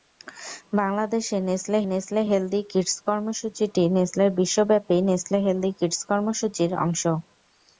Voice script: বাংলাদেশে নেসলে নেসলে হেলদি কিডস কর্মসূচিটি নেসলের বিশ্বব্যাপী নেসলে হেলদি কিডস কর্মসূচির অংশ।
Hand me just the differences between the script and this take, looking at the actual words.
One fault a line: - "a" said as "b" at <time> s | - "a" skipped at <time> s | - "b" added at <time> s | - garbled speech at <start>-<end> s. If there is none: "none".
none